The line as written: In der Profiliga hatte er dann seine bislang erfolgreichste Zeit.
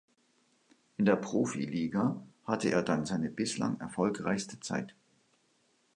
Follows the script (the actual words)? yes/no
yes